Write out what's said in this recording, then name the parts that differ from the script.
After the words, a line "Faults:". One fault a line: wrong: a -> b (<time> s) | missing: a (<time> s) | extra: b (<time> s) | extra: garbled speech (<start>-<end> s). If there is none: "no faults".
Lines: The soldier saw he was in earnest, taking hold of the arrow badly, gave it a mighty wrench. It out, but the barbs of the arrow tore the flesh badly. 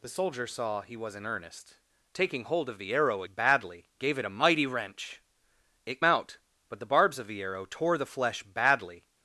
The soldier saw he was in earnest, taking hold of the arrow badly, gave it a mighty wrench. It out, but the barbs of the arrow tore the flesh badly.
Faults:
no faults